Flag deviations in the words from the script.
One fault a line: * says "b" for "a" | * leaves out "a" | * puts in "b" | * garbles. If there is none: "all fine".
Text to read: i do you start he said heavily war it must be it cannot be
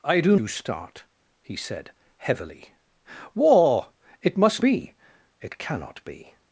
all fine